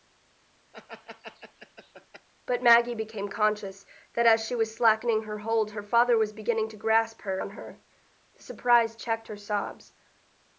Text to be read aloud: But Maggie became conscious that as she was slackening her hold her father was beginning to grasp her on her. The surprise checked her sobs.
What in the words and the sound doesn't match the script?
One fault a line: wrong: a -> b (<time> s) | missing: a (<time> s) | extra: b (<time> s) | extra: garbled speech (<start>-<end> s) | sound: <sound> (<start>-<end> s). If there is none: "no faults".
sound: laugh (0.7-2.3 s)